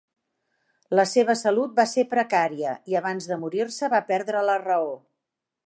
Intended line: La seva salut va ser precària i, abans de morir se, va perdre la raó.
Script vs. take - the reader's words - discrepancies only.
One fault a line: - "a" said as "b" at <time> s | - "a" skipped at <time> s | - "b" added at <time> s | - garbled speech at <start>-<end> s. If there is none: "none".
none